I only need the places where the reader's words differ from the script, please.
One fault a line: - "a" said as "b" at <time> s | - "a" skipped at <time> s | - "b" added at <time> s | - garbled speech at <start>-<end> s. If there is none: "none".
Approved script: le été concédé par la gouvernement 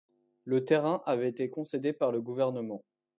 - "terrain avait" added at 0.7 s
- "la" said as "le" at 2.1 s